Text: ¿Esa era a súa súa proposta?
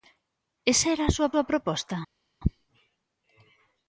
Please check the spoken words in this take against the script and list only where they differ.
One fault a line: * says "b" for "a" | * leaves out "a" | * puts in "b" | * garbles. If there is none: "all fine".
all fine